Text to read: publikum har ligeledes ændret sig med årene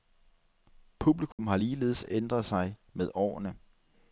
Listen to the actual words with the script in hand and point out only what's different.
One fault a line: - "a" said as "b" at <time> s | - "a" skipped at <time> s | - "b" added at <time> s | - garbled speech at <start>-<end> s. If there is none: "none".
none